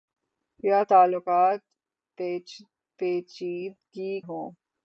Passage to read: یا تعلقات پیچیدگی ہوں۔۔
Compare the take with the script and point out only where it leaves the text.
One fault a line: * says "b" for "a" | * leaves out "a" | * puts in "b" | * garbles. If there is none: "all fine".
all fine